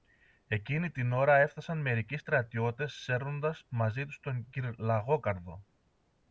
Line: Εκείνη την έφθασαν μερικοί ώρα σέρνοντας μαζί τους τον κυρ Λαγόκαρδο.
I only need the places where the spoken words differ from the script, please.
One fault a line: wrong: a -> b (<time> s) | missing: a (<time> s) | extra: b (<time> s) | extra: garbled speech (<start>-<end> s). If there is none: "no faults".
extra: ώρα (1.1 s)
wrong: ώρα -> στρατιώτες (2.2 s)